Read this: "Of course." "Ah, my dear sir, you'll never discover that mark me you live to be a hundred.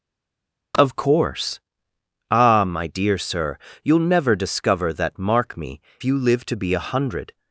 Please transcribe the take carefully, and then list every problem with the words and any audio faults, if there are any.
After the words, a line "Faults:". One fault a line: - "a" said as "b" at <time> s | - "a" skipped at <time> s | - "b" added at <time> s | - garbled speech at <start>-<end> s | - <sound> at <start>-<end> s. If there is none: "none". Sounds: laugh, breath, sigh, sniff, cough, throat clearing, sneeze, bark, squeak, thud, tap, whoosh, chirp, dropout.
"Of course." "Ah, my dear sir, you'll never discover that mark me you live to be a hundred.
Faults:
none